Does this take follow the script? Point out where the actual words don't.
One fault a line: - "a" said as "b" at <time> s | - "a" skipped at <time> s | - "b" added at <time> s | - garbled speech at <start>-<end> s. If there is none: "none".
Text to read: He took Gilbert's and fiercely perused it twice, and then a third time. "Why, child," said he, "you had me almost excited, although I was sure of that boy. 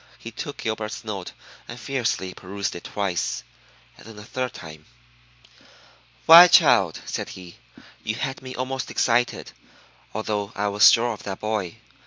- "note" added at 1.0 s